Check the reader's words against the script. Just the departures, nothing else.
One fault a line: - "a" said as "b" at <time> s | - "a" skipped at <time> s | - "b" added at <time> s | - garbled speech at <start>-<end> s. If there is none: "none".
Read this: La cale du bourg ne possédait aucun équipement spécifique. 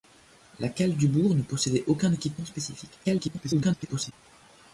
- garbled speech at 3.0-4.1 s